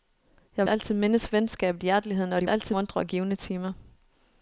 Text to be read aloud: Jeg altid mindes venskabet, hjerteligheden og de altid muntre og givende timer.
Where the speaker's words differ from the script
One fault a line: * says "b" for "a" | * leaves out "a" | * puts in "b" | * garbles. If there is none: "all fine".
all fine